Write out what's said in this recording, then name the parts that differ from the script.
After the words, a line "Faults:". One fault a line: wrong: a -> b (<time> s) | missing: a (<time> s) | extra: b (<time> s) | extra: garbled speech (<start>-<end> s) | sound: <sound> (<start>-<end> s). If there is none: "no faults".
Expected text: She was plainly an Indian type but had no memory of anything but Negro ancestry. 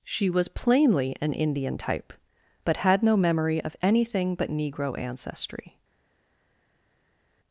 She was plainly an Indian type but had no memory of anything but Negro ancestry.
Faults:
no faults